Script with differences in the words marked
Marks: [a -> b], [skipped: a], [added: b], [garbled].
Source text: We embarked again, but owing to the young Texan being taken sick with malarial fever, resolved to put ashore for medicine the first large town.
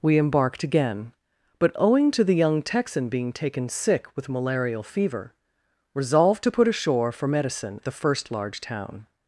We embarked again, but owing to the young Texan being taken sick with malarial fever, resolved to put ashore for medicine the first large town.